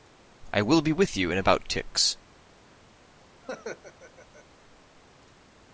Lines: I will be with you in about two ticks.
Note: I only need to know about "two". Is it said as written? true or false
false